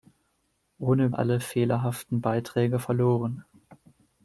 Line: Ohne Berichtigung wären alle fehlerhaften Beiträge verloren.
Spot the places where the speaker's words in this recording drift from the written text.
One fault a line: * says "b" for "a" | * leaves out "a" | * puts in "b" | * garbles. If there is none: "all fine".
* leaves out "Berichtigung wären"